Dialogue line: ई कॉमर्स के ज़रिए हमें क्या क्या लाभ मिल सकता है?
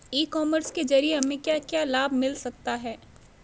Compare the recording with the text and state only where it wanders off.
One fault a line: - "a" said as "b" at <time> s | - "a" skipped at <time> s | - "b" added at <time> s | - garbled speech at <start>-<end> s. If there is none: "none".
none